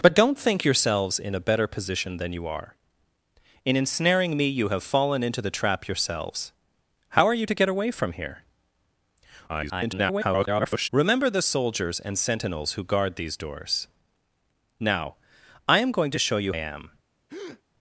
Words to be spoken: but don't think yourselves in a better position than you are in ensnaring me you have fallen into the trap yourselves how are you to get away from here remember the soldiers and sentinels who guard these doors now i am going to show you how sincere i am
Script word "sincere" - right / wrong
wrong